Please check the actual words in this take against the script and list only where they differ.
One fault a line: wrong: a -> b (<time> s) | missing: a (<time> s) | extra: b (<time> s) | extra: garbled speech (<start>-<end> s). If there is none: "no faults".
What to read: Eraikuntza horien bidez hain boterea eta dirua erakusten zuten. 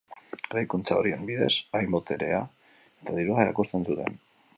no faults